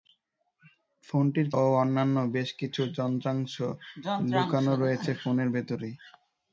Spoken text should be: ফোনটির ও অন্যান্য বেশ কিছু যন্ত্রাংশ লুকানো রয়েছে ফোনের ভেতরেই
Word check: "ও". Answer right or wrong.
right